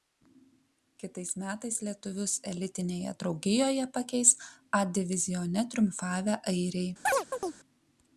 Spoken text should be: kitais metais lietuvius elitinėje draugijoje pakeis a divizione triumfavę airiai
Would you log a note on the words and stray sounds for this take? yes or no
yes